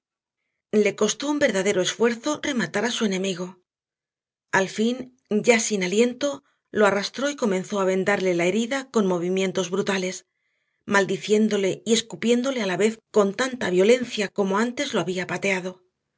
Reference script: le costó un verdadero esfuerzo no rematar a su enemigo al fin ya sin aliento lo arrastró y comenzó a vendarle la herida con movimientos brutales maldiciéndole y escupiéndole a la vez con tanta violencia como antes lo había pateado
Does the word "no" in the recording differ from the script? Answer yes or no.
yes